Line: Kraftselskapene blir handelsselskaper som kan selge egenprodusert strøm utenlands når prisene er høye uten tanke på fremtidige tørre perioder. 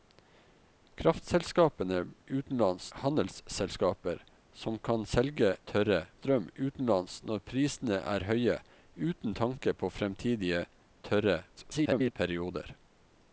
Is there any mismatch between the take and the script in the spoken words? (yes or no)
yes